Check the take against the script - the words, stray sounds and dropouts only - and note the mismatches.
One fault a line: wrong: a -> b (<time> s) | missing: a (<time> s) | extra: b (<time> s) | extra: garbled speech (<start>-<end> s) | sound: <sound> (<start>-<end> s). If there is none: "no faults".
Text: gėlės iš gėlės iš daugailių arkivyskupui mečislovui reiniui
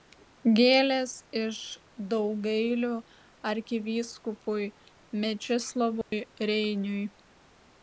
missing: gėlės iš (1.6 s)
sound: dropout (6.0-6.1 s)